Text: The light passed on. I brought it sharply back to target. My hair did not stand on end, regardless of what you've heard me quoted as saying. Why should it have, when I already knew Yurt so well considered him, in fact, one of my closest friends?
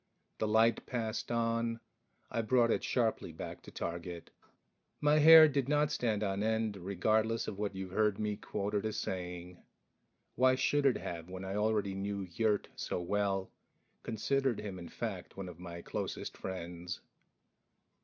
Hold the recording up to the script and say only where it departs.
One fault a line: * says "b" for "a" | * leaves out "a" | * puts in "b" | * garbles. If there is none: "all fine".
all fine